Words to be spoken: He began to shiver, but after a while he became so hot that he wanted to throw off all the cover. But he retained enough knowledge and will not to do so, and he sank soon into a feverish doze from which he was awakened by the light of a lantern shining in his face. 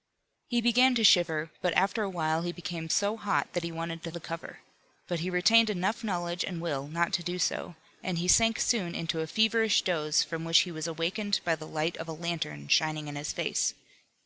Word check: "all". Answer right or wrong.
wrong